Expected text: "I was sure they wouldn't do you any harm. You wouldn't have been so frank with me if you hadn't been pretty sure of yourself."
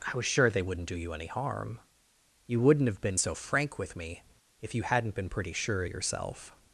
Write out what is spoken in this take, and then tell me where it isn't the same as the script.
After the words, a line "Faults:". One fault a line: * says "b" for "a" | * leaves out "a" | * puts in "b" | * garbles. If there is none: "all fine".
"I was sure they wouldn't do you any harm. You wouldn't have been so frank with me if you hadn't been pretty sure of yourself."
Faults:
all fine